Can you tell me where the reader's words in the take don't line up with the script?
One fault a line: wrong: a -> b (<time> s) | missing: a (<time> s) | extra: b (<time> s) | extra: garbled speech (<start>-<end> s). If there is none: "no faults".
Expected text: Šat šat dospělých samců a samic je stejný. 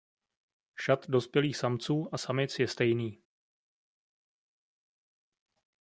missing: šat (1.1 s)